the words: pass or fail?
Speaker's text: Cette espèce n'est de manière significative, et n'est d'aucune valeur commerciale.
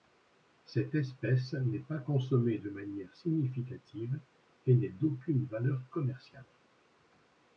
fail